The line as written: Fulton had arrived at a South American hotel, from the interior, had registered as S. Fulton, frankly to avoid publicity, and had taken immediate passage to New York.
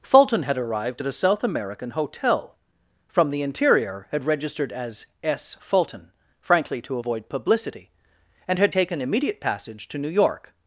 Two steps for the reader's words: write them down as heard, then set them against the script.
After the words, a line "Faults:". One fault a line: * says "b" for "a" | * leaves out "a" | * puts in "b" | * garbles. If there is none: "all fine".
Fulton had arrived at a South American hotel, from the interior, had registered as S. Fulton, frankly to avoid publicity, and had taken immediate passage to New York.
Faults:
all fine